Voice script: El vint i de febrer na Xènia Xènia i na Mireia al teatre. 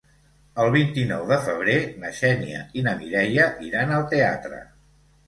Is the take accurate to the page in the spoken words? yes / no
no